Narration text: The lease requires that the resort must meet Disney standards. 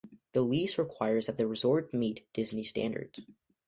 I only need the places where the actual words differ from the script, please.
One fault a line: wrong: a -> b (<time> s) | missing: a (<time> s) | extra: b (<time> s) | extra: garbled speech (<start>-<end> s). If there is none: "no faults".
missing: must (1.9 s)